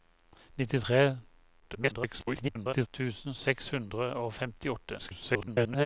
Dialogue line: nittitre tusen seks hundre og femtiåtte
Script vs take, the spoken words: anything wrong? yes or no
yes